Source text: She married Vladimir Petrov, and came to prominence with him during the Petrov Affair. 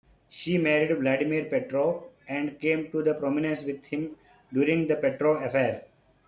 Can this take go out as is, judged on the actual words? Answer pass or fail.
pass